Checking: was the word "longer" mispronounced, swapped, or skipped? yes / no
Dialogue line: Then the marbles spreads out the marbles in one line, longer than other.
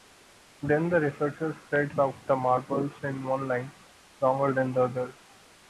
no